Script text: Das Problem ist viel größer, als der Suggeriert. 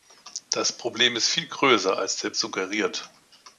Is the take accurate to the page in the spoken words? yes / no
yes